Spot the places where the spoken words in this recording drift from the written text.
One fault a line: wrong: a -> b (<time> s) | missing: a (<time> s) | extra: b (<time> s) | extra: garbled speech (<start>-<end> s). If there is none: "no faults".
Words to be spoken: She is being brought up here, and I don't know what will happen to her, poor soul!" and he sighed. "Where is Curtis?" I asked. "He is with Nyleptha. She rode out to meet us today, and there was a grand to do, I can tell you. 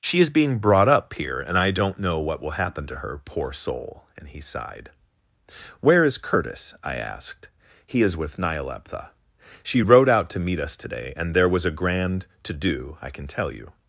no faults